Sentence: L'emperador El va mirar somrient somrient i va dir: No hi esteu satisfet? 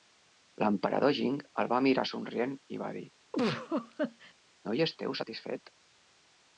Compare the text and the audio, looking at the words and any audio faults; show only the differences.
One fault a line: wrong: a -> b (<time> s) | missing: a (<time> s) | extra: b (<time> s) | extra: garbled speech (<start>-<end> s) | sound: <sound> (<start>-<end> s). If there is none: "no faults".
extra: Jing (1.2 s)
missing: somrient (2.6 s)
sound: laugh (3.3-4.3 s)